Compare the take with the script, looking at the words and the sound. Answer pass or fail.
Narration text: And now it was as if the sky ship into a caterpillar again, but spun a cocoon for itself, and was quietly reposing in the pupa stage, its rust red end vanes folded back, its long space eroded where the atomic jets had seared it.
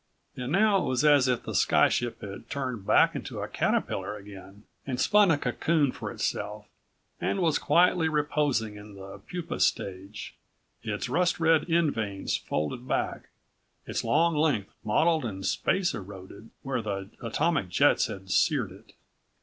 fail